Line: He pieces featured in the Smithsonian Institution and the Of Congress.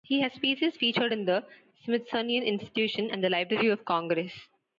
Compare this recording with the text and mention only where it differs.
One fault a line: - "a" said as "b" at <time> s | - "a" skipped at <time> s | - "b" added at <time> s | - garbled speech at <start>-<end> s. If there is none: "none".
- "has" added at 0.2 s
- "Library" added at 3.3 s